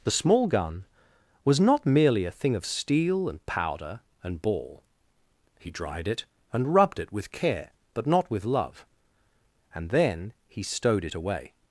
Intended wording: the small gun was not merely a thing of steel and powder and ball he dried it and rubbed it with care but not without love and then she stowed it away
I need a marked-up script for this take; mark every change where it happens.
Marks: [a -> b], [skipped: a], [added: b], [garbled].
the small gun was not merely a thing of steel and powder and ball he dried it and rubbed it with care but not [without -> with] love and then [she -> he] stowed it away